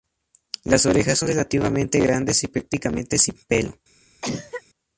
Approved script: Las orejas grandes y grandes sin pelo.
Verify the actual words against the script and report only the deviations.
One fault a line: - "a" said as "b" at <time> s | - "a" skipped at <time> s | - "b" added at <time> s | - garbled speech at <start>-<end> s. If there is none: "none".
- "son relativamente" added at 1.2 s
- "grandes" said as "prácticamente" at 2.5 s